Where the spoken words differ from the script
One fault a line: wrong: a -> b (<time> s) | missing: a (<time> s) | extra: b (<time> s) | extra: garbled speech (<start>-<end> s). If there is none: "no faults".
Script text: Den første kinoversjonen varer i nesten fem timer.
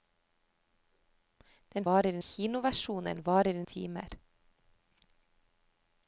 wrong: første -> varer (1.8 s)
missing: nesten fem (3.6 s)